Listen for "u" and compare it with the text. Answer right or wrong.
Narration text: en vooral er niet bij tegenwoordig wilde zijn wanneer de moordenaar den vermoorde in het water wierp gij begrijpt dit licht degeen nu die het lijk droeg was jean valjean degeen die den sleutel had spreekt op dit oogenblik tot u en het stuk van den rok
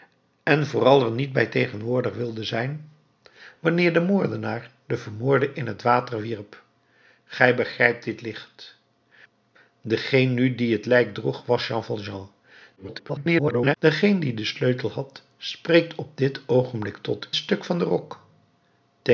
wrong